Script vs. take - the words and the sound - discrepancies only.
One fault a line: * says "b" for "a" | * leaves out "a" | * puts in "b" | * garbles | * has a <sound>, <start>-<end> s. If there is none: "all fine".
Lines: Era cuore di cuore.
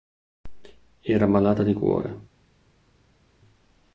* says "malata" for "cuore"